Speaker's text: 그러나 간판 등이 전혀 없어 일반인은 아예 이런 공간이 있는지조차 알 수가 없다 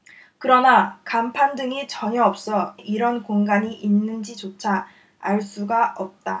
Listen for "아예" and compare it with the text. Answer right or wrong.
wrong